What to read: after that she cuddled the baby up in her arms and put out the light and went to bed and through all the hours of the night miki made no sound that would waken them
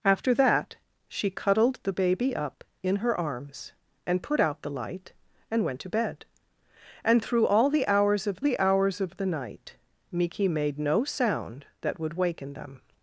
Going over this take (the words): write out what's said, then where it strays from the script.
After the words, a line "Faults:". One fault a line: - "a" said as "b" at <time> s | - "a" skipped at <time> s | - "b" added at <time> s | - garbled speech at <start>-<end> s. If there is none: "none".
after that she cuddled the baby up in her arms and put out the light and went to bed and through all the hours of the hours of the night miki made no sound that would waken them
Faults:
- "hours of the" added at 8.6 s